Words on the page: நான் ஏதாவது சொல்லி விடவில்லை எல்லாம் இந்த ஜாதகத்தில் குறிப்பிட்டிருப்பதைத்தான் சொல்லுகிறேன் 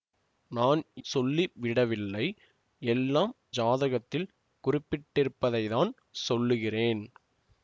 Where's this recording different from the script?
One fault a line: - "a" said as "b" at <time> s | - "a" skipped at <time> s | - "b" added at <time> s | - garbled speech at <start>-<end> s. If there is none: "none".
- "ஏதாவது" skipped at 0.8 s
- "இந்த" skipped at 3.3 s